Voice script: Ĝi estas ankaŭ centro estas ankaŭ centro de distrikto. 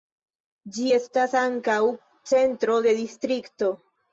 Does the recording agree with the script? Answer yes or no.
no